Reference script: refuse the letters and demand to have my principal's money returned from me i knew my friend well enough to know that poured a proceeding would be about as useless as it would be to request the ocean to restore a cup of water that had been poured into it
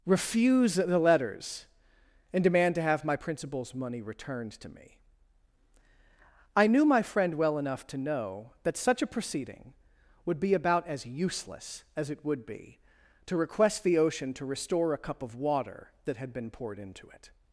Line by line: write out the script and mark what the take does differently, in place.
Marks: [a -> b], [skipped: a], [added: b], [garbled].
refuse the letters and demand to have my principal's money returned [from -> to] me i knew my friend well enough to know that [poured -> such] a proceeding would be about as useless as it would be to request the ocean to restore a cup of water that had been poured into it